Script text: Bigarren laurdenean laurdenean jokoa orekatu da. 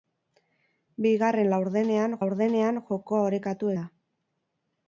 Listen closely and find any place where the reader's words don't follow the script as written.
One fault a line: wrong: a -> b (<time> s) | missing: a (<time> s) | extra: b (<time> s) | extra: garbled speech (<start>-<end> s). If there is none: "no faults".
no faults